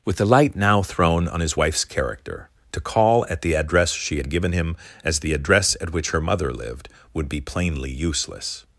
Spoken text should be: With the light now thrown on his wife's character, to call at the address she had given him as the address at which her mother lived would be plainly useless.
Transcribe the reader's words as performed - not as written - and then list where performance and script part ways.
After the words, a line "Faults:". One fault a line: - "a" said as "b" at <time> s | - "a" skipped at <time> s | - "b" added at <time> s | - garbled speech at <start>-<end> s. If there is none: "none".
With the light now thrown on his wife's character, to call at the address she had given him as the address at which her mother lived would be plainly useless.
Faults:
none